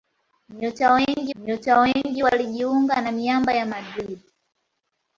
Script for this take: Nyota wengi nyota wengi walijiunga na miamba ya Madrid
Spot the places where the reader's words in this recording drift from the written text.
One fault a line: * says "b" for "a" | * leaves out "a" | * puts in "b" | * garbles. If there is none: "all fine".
all fine